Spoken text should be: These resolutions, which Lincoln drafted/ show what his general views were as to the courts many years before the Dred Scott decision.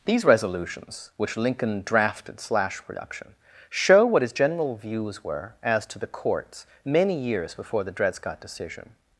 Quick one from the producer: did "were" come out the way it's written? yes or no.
yes